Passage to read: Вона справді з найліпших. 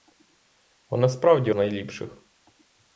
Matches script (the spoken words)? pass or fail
pass